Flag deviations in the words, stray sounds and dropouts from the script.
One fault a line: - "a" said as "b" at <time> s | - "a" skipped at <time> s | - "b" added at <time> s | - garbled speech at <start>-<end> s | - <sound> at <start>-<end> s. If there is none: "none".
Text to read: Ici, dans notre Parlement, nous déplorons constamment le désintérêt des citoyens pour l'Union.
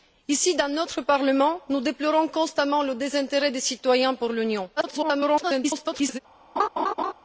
- garbled speech at 4.8-6.2 s
- laugh at 6.6-7.1 s